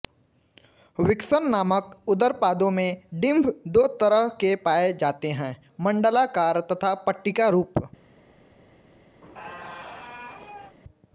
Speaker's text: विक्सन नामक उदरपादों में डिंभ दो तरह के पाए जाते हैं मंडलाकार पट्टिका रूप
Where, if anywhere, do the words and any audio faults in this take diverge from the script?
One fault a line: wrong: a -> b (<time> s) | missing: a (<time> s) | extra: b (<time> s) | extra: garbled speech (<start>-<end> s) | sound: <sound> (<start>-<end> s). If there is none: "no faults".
extra: तथा (6.7 s)
sound: squeak (9.2-10.8 s)